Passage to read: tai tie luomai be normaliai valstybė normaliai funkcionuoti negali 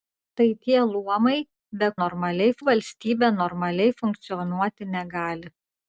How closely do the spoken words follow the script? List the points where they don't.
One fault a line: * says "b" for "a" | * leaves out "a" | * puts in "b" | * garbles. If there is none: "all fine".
all fine